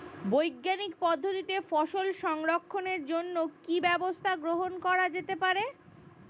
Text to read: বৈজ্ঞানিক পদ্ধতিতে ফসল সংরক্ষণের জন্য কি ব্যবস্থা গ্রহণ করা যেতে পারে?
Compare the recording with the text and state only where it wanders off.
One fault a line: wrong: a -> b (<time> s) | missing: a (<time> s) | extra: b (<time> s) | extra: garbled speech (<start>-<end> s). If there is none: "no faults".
no faults